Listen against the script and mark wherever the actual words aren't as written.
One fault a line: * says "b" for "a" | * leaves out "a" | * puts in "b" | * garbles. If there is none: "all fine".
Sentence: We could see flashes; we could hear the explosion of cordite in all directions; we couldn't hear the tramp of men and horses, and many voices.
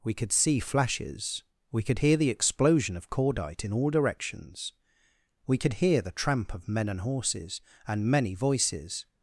* says "could" for "couldn't"